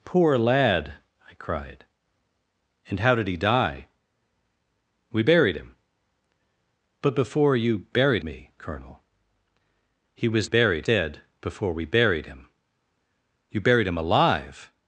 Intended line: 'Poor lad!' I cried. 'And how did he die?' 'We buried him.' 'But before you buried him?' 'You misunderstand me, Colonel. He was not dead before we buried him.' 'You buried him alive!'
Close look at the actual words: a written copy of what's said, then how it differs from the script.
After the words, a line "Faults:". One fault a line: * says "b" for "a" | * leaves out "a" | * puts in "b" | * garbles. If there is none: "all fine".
'Poor lad!' I cried. 'And how did he die?' 'We buried him.' 'But before you buried me, Colonel. He was buried dead before we buried him.' 'You buried him alive!'
Faults:
* leaves out "him You misunderstand"
* says "buried" for "not"